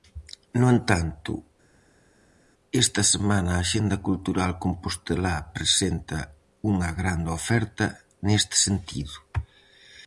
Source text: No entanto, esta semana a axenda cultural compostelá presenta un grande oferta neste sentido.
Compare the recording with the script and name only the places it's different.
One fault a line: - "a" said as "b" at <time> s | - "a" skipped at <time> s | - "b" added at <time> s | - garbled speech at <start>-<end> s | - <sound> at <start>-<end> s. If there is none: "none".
- "un" said as "unha" at 6.7 s